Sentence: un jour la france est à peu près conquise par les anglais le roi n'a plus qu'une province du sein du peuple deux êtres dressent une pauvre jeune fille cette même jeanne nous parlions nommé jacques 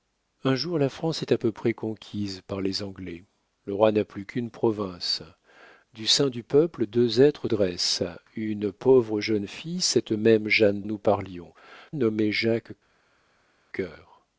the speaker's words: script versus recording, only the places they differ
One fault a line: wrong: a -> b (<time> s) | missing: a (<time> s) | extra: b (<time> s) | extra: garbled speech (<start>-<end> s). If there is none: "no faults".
no faults